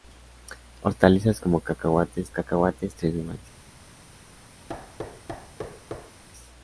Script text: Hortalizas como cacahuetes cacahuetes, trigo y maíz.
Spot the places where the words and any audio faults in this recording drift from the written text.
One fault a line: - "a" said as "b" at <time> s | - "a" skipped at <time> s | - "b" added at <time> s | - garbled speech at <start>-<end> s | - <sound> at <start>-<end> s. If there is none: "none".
- thud at 4.7-6.2 s